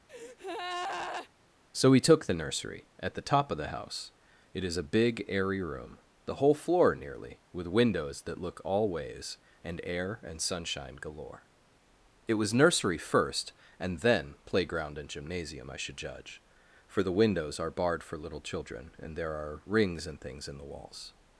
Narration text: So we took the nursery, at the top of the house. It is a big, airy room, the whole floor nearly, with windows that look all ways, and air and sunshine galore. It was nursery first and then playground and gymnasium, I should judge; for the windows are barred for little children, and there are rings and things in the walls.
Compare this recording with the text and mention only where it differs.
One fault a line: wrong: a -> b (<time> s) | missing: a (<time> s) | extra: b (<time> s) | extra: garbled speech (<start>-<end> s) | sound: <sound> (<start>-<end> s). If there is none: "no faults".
sound: breath (0.1-1.3 s)